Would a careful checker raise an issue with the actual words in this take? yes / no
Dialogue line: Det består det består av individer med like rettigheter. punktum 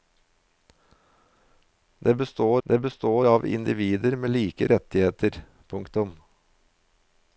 no